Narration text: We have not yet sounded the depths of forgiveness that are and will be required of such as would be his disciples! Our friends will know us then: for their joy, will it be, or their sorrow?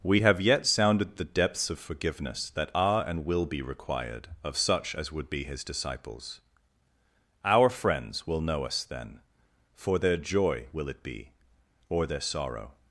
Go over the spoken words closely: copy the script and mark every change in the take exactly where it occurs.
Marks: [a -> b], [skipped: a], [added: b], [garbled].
We have [skipped: not] yet sounded the depths of forgiveness that are and will be required of such as would be his disciples! Our friends will know us then: for their joy, will it be, or their sorrow?